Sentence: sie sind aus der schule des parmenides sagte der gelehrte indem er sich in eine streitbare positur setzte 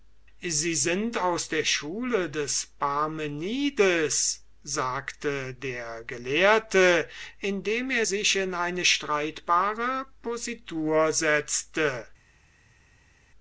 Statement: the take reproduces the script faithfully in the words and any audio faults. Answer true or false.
true